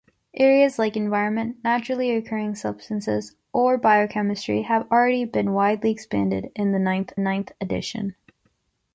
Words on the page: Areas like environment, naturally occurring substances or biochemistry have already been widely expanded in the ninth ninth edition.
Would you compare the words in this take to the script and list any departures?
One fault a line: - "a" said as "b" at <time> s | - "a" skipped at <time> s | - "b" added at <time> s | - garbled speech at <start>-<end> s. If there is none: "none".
none